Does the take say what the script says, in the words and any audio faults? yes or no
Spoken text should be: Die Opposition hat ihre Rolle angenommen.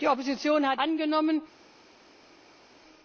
no